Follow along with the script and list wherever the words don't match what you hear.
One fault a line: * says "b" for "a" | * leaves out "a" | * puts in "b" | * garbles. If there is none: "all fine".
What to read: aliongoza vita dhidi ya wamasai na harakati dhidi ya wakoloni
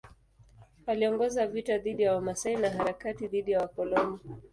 all fine